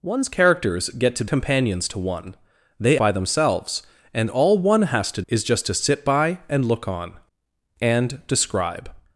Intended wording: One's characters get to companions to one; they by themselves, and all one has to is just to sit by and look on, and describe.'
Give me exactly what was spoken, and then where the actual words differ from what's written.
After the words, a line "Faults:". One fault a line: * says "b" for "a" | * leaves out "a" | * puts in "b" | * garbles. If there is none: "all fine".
One's characters get to companions to one; they by themselves, and all one has to is just to sit by and look on, and describe.'
Faults:
all fine